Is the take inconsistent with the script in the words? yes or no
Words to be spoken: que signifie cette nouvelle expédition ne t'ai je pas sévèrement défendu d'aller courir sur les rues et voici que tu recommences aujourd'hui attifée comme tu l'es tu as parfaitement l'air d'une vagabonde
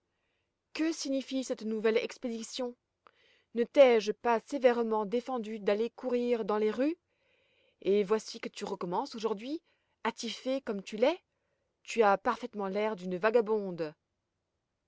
yes